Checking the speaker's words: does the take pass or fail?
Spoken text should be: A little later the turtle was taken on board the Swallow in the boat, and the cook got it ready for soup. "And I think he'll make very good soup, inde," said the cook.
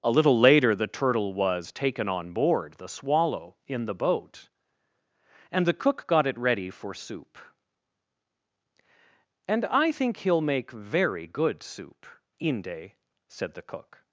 pass